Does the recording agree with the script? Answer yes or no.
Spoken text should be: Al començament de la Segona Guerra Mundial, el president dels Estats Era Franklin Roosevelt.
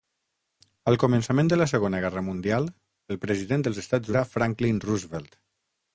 yes